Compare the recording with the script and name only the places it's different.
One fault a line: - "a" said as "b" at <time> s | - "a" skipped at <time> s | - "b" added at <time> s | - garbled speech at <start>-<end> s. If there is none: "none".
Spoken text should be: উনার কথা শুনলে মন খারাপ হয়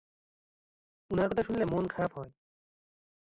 none